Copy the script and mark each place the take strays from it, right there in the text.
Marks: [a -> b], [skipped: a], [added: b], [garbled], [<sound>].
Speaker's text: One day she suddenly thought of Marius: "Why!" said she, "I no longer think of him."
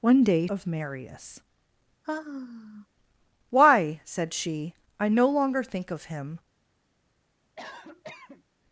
One day [skipped: she suddenly thought] of Marius: [sigh] "Why!" said she, "I no longer think of him." [cough]